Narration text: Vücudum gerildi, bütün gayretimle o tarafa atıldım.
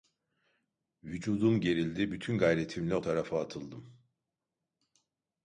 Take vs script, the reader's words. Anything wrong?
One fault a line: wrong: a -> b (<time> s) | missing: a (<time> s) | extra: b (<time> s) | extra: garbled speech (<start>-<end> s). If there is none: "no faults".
no faults